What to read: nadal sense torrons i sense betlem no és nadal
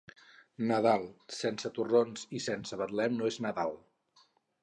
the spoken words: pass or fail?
pass